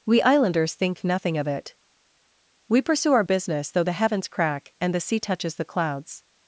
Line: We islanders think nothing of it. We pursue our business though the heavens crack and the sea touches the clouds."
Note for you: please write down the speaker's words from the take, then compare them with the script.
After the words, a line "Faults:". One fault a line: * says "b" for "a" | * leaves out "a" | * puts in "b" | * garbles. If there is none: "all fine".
We islanders think nothing of it. We pursue our business though the heavens crack and the sea touches the clouds."
Faults:
all fine